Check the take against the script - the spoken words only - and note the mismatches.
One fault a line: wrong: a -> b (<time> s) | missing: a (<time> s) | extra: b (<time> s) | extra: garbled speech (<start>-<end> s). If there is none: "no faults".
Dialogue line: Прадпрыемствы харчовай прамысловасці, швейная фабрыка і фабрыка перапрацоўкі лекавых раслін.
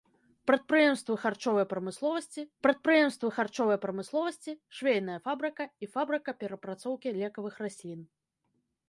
extra: прадпрыемствы харчовай прамысловасці (2.6 s)